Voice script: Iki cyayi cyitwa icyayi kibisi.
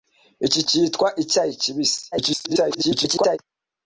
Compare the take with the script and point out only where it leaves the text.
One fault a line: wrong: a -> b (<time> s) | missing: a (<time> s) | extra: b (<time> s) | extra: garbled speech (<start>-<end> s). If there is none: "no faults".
missing: cyayi (0.6 s)
extra: garbled speech (2.1-3.4 s)